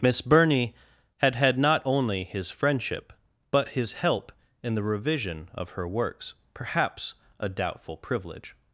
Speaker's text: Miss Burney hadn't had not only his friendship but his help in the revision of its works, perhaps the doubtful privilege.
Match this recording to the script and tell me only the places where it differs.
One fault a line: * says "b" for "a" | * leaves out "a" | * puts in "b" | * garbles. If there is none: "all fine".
* says "had" for "hadn't"
* says "her" for "its"
* says "a" for "the"